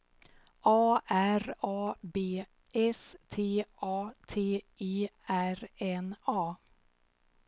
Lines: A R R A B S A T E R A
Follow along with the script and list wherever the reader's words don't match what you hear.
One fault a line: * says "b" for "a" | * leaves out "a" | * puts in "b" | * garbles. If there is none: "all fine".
* leaves out "R"
* puts in "T"
* puts in "N"